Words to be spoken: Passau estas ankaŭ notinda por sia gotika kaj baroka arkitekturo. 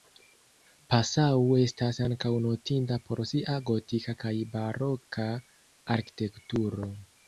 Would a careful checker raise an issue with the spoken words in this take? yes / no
no